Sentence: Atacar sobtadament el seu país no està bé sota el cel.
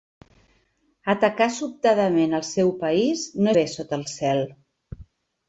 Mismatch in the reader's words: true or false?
true